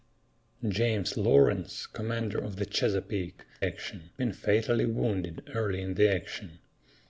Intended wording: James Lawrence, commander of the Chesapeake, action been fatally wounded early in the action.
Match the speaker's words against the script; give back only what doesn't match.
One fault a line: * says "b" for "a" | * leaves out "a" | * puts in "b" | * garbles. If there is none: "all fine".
all fine